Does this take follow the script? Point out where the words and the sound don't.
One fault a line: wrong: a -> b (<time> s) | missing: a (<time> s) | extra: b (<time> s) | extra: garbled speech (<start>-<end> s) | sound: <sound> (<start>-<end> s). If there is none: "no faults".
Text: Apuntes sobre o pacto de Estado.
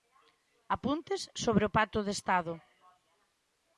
no faults